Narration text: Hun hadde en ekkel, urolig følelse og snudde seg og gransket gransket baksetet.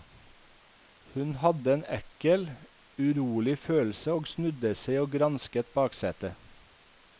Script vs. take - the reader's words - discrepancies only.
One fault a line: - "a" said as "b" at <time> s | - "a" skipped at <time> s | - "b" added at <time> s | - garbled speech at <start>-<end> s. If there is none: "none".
- "gransket" skipped at 5.7 s